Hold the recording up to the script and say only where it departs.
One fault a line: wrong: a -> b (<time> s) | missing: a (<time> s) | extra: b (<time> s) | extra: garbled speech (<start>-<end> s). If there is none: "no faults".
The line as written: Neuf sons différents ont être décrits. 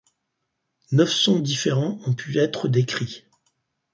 extra: pu (2.1 s)